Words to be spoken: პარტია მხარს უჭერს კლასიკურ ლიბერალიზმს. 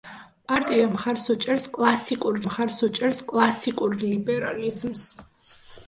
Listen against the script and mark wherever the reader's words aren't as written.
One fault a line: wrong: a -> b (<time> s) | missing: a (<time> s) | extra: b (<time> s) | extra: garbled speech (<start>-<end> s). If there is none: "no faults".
extra: მხარს უჭერს კლასიკურ (2.4 s)